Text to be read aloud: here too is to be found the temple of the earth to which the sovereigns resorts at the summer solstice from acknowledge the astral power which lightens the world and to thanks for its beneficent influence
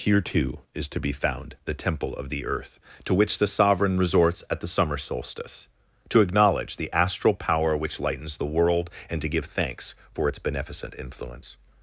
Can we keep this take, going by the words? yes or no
no